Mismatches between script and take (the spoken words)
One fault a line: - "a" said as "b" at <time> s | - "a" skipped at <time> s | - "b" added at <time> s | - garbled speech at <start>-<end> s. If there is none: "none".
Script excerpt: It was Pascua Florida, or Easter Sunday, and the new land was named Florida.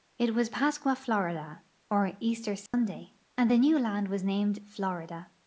none